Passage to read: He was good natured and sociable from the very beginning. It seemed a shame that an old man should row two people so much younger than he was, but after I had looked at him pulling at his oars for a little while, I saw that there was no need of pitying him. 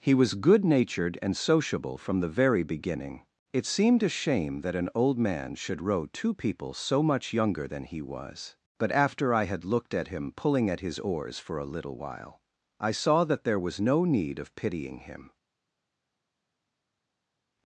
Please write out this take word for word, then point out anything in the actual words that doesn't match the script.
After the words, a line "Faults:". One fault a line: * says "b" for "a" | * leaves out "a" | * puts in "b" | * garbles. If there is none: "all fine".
He was good natured and sociable from the very beginning. It seemed a shame that an old man should row two people so much younger than he was, but after I had looked at him pulling at his oars for a little while, I saw that there was no need of pitying him.
Faults:
all fine